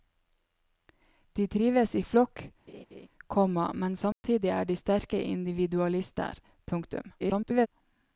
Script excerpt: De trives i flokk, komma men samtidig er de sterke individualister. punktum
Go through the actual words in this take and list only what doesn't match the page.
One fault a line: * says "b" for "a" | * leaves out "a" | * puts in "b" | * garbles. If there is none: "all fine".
* garbles